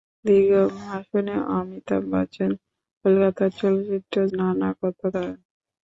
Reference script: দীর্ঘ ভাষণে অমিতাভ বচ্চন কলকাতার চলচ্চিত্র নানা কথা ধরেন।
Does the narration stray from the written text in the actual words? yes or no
no